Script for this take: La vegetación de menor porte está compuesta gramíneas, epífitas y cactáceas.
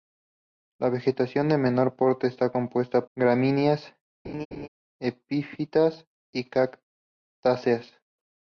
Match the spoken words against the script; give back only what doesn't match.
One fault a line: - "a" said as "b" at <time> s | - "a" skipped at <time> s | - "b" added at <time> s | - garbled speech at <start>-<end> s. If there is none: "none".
none